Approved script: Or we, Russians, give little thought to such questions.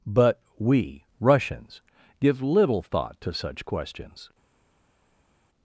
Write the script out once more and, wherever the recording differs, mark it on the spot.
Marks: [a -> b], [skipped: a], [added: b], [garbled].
[Or -> But] we, Russians, give little thought to such questions.